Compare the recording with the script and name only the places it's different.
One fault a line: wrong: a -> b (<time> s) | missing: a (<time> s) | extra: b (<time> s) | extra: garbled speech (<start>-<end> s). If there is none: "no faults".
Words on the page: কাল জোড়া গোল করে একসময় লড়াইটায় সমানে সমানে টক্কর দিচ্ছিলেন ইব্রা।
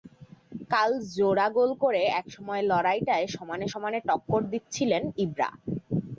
no faults